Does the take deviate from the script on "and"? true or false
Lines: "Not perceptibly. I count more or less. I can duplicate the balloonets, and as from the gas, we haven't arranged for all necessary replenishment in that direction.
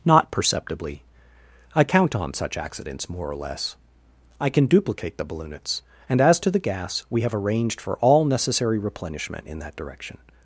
false